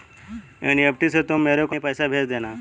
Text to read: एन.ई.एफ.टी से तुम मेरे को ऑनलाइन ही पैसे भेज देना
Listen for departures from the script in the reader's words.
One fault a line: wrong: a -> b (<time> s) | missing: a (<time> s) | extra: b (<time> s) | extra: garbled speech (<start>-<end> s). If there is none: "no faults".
missing: ऑनलाइन (1.8 s)